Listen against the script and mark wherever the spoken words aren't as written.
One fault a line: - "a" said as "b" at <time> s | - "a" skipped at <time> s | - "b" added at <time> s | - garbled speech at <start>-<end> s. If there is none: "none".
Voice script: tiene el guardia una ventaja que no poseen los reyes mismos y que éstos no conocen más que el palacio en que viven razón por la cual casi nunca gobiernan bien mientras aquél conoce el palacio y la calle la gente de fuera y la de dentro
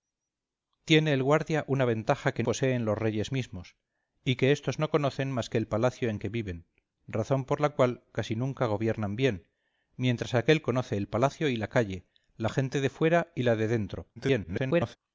- "no" skipped at 2.4 s
- garbled speech at 14.2-15.0 s